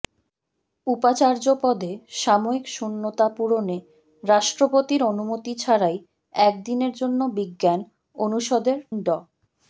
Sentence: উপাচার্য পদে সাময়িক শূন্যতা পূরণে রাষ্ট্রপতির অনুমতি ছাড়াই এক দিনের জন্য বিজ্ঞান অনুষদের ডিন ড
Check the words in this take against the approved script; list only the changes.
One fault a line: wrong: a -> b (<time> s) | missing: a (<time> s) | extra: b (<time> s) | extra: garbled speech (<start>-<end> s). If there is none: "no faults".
missing: ডিন (8.8 s)